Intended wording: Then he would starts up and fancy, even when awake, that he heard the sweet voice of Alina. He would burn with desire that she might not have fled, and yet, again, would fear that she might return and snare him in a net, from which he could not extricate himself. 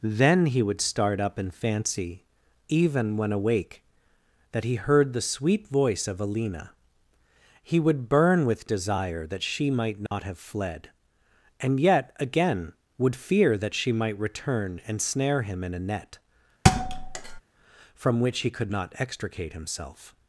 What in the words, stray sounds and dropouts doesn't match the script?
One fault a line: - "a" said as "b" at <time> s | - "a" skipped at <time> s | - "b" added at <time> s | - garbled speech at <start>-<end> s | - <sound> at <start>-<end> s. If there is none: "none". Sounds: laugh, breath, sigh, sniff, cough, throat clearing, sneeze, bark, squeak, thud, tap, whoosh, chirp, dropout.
- "starts" said as "start" at 0.8 s
- dropout at 10.1-10.1 s
- thud at 16.6-17.4 s